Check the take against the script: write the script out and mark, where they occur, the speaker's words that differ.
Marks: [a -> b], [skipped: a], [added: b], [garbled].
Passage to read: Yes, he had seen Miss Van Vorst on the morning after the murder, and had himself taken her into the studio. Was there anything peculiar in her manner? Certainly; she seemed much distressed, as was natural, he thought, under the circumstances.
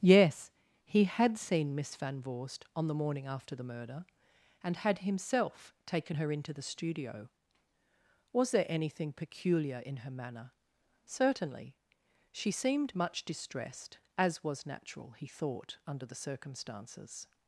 Yes, he had seen Miss Van Vorst on the morning after the murder, and had himself taken her into the studio. Was there anything peculiar in her manner? Certainly; she seemed much distressed, as was natural, he thought, under the circumstances.